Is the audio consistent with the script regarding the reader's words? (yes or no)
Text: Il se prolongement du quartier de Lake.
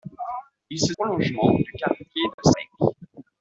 yes